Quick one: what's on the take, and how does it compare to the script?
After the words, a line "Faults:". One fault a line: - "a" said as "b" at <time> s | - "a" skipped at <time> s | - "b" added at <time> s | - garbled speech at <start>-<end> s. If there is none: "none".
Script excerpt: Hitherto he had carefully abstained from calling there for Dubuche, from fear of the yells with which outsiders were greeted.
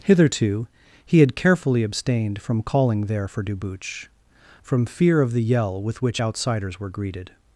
Hitherto he had carefully abstained from calling there for Dubuche, from fear of the yell with which outsiders were greeted.
Faults:
- "yells" said as "yell" at 5.4 s